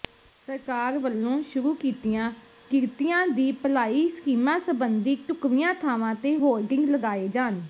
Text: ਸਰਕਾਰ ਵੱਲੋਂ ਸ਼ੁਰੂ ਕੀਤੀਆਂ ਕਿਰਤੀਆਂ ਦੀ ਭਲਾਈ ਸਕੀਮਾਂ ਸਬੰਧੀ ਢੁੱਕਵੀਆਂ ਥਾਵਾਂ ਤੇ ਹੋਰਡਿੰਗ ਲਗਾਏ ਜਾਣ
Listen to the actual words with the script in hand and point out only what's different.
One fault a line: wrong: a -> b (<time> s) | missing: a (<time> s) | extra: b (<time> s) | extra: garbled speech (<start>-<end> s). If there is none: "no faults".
no faults